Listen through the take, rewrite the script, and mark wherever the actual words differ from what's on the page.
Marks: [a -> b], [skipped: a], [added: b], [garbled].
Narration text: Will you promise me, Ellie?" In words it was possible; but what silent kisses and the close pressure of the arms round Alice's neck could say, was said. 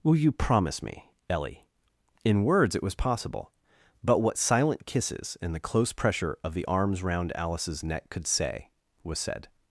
Will you promise me, Ellie?" In words it was possible; but what silent kisses and the close pressure of the arms round Alice's neck could say, was said.